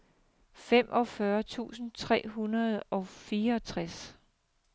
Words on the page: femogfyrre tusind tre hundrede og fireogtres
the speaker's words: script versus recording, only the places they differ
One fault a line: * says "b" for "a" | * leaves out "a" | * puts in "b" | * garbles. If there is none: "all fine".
all fine